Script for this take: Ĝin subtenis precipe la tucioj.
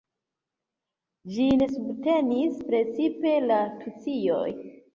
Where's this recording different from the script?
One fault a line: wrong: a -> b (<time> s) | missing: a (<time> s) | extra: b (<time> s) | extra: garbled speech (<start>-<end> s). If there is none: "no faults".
no faults